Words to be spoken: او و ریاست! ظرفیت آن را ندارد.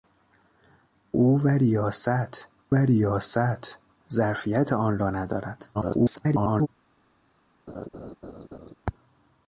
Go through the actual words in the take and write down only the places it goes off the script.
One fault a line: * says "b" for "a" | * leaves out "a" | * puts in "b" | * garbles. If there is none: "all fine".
* puts in "ریاست"
* garbles